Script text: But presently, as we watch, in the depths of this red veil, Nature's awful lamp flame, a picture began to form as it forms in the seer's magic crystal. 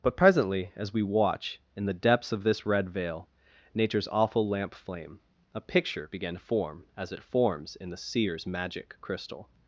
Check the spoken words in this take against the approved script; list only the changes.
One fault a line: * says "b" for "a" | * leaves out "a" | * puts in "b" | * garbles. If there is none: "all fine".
all fine